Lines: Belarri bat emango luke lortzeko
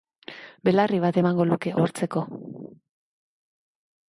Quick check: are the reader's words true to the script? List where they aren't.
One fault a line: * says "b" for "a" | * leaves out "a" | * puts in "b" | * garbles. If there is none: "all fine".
all fine